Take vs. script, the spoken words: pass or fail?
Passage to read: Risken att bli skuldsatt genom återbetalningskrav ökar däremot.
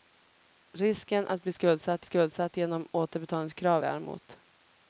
fail